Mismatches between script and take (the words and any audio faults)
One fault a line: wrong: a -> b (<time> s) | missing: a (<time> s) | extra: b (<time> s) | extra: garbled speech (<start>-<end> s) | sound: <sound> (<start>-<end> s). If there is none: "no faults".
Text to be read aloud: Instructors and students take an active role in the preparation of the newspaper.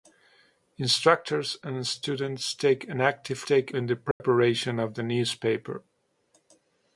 wrong: role -> take (3.4 s)
sound: dropout (4.1-4.2 s)